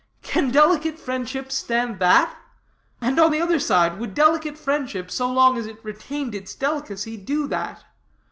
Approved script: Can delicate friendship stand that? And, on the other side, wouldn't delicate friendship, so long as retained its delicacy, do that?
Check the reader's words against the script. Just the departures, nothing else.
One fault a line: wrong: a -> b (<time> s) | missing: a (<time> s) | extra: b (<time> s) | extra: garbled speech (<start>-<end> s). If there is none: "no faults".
wrong: wouldn't -> would (4.0 s)
extra: it (5.7 s)